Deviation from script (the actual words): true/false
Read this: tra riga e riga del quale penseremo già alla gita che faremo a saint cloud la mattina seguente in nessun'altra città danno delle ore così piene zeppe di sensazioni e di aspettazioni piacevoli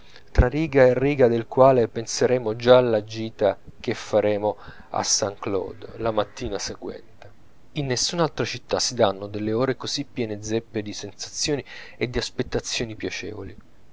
true